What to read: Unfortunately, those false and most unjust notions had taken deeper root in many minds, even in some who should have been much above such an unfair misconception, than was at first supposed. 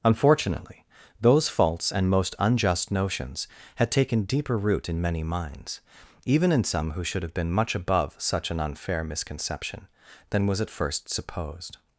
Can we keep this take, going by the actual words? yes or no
yes